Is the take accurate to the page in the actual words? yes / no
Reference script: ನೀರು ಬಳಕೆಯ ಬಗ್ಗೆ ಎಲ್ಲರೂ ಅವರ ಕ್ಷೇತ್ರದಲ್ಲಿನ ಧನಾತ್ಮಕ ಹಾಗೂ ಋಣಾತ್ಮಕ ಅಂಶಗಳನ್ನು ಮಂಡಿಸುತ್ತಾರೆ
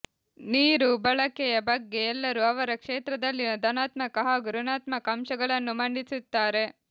yes